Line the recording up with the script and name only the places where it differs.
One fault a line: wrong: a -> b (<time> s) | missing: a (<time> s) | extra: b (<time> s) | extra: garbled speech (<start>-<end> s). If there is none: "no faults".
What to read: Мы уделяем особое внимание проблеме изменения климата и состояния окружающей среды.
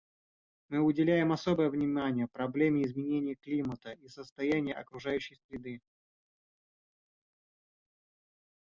no faults